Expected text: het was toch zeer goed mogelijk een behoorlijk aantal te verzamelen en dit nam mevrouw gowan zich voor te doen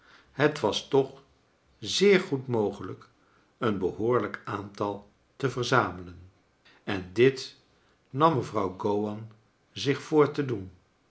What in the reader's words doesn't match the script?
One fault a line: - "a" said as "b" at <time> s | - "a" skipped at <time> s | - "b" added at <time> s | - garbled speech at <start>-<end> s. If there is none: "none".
none